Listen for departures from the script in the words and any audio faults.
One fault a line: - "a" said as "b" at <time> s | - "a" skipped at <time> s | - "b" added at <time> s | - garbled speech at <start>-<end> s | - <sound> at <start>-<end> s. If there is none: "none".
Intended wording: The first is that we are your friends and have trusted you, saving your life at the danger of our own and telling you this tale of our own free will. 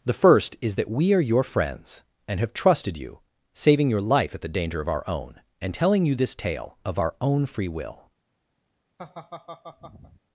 - laugh at 9.0-10.2 s